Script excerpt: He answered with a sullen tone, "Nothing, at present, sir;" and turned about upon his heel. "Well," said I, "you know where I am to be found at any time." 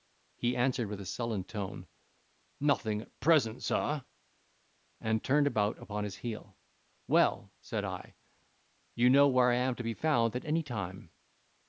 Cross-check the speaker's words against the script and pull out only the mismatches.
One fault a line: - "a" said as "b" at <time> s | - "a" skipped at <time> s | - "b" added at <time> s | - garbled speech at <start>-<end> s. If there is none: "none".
none